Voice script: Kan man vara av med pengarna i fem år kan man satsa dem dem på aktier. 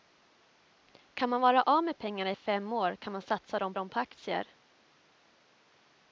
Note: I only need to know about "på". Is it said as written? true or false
true